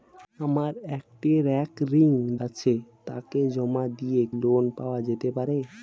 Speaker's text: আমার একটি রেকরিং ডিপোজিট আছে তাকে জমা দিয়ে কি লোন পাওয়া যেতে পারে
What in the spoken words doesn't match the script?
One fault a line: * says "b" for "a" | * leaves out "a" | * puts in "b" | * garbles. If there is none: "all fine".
* leaves out "ডিপোজিট"
* leaves out "কি"